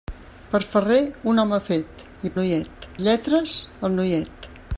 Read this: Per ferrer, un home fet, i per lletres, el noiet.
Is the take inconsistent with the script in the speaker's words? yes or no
yes